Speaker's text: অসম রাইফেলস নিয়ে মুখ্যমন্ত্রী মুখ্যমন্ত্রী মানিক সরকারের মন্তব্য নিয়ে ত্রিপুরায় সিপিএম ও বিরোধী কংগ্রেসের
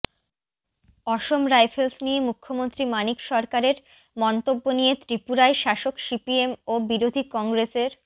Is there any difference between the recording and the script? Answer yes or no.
yes